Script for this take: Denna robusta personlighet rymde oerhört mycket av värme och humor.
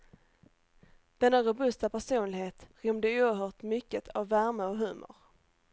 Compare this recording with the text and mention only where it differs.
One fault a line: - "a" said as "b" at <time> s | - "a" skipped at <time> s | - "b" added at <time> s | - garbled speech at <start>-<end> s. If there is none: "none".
none